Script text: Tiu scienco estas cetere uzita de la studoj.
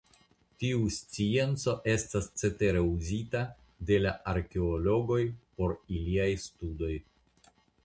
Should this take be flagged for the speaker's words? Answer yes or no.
yes